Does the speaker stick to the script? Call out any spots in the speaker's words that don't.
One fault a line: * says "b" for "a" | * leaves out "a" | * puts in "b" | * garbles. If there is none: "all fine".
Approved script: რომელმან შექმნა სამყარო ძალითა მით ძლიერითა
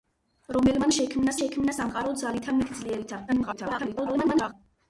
* puts in "შექმნა"
* garbles